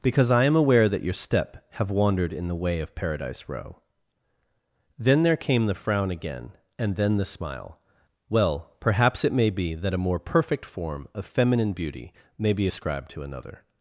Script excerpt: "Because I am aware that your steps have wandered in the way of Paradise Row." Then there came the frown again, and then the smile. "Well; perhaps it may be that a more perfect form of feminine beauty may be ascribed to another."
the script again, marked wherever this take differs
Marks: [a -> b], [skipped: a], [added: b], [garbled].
"Because I am aware that your [steps -> step] have wandered in the way of Paradise Row." Then there came the frown again, and then the smile. "Well; perhaps it may be that a more perfect form of feminine beauty may be ascribed to another."